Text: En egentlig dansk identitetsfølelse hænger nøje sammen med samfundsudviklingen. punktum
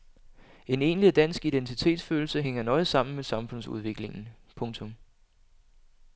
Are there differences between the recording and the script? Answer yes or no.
no